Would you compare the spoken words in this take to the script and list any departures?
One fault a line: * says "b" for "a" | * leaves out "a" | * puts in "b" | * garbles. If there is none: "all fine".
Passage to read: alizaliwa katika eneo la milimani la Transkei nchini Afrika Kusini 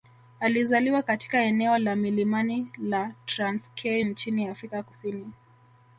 all fine